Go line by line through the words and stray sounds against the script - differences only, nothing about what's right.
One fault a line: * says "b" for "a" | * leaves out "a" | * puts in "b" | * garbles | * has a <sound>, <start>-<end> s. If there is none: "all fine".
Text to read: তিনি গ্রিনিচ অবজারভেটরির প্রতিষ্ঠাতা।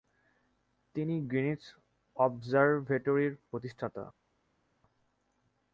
all fine